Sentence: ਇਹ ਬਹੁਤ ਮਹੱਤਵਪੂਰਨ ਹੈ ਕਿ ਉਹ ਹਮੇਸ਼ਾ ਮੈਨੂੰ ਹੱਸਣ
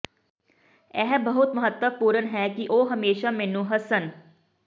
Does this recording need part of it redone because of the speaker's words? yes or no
no